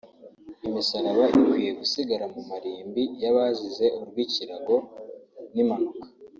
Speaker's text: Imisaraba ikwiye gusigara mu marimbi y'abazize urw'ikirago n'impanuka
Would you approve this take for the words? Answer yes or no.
yes